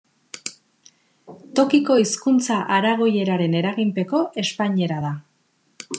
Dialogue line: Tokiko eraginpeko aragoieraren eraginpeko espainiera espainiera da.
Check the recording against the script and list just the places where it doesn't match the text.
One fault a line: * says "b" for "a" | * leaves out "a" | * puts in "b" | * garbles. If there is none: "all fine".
* says "hizkuntza" for "eraginpeko"
* leaves out "espainiera"